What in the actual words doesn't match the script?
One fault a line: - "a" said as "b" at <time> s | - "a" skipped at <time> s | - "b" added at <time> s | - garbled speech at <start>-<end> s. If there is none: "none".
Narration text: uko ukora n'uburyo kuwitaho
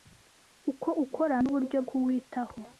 none